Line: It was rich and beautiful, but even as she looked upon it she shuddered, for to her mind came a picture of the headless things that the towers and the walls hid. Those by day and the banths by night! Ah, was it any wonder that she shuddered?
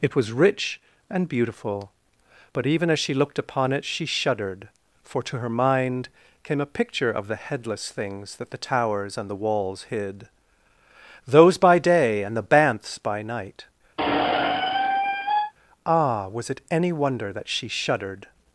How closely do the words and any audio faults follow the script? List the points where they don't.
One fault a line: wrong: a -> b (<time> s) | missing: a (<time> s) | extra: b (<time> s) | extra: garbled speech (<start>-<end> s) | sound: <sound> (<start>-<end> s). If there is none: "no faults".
sound: squeak (14.0-15.5 s)